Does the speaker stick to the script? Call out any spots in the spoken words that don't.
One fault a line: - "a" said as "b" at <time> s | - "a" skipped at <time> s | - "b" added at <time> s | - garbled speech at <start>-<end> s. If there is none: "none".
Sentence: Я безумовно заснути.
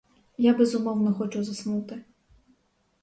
- "хочу" added at 1.1 s